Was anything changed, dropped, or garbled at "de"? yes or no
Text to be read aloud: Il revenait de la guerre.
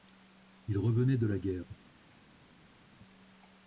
no